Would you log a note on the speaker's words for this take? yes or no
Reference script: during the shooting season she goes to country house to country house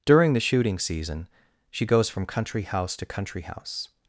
yes